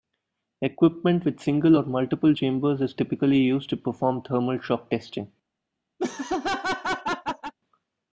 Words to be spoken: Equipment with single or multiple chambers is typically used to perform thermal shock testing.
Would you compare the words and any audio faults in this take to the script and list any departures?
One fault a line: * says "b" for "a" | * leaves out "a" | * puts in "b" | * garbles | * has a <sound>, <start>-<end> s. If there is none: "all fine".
* has a laugh, 6.0-7.5 s